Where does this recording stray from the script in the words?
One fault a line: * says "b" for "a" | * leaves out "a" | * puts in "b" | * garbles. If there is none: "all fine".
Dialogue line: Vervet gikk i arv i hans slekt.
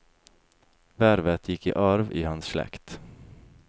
all fine